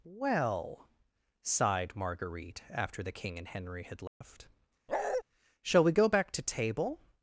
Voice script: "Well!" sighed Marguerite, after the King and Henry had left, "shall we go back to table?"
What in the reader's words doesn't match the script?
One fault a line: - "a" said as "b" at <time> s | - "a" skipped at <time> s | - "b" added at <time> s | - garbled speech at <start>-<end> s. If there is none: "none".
none